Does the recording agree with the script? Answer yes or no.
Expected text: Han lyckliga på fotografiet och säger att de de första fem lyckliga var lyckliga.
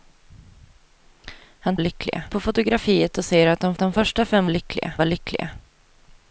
yes